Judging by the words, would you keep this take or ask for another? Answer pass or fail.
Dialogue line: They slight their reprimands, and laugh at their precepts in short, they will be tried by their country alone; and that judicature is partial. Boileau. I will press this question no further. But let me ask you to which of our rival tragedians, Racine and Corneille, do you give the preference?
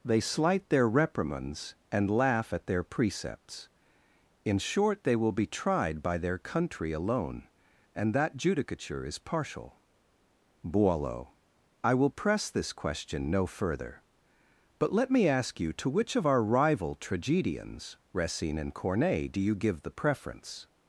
pass